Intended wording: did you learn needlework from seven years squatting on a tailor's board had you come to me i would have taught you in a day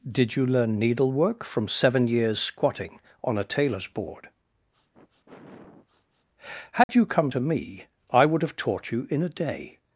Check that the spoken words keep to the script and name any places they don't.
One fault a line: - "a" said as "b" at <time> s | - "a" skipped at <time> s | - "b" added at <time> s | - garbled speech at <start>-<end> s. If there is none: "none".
none